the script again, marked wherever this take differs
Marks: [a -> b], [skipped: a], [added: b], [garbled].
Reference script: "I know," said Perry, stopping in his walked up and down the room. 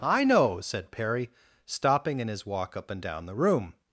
"I know," said Perry, stopping in his [walked -> walk] up and down the room.